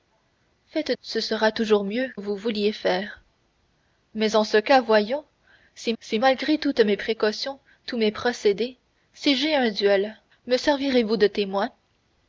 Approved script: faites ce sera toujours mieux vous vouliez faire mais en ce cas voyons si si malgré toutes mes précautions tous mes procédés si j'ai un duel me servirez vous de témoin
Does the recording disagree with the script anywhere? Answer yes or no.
no